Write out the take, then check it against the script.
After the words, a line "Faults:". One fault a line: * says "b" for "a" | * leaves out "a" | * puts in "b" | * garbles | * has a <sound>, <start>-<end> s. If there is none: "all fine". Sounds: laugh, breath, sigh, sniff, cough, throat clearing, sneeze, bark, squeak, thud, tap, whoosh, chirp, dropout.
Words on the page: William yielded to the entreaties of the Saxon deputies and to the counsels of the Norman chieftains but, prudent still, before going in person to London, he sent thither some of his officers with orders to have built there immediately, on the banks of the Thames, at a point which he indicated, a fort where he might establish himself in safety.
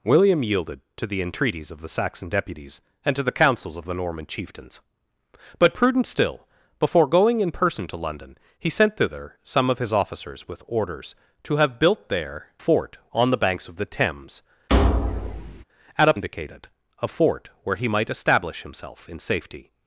William yielded to the entreaties of the Saxon deputies and to the counsels of the Norman chieftains but, prudent still, before going in person to London, he sent thither some of his officers with orders to have built there fort, on the banks of the Thames, at a indicated, a fort where he might establish himself in safety.
Faults:
* says "fort" for "immediately"
* has a thud, 14.7-15.6 s
* leaves out "point which he"